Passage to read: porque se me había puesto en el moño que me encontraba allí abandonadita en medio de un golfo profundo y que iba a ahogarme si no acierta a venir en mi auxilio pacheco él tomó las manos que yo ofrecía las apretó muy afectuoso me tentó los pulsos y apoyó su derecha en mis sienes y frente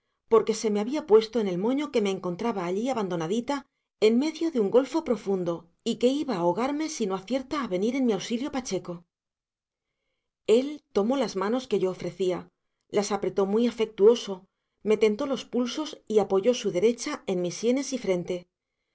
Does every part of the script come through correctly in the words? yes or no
yes